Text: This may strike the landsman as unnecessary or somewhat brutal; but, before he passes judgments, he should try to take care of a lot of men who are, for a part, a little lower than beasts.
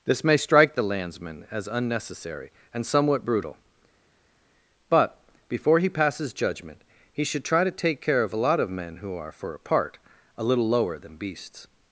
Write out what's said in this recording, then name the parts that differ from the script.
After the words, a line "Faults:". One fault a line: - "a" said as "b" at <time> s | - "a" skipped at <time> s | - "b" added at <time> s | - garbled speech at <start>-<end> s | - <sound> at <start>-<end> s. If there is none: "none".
This may strike the landsman as unnecessary and somewhat brutal; but, before he passes judgment, he should try to take care of a lot of men who are, for a part, a little lower than beasts.
Faults:
- "or" said as "and" at 2.7 s
- "judgments" said as "judgment" at 6.3 s